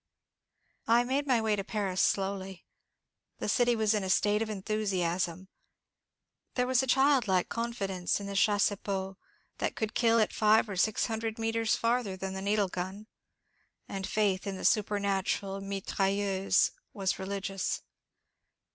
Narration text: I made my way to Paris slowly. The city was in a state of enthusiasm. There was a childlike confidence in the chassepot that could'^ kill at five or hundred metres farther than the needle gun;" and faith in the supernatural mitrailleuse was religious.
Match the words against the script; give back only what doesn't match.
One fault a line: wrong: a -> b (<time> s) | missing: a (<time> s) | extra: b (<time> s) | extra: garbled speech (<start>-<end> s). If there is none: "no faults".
extra: six (10.8 s)